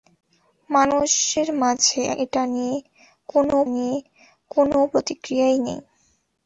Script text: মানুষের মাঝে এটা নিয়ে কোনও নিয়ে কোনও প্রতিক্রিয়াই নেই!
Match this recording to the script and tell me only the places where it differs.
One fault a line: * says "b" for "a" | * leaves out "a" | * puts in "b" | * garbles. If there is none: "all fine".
all fine